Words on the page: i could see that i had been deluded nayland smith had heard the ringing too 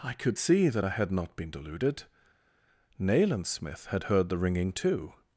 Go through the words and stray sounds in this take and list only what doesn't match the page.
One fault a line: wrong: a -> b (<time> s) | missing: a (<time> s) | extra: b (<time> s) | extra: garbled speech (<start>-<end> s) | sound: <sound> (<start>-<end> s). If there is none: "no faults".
extra: not (1.1 s)